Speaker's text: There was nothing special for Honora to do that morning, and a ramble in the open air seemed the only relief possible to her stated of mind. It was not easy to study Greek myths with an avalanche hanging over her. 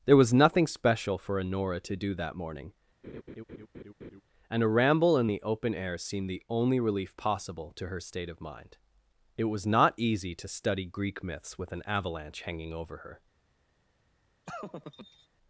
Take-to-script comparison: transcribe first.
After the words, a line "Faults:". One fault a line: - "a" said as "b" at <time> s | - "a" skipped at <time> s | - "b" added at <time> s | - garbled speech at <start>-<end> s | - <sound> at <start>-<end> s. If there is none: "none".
There was nothing special for Honora to do that morning, and a ramble in the open air seemed the only relief possible to her state of mind. It was not easy to study Greek myths with an avalanche hanging over her.
Faults:
- laugh at 3.0-4.2 s
- "stated" said as "state" at 8.0 s
- laugh at 14.5-15.3 s